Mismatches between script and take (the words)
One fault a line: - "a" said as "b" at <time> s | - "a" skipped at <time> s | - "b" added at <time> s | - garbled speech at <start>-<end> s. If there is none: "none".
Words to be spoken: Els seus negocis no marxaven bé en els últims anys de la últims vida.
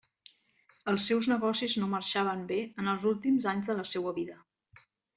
- "últims" said as "seua" at 4.0 s